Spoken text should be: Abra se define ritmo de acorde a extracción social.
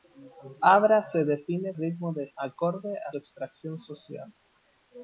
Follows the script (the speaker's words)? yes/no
yes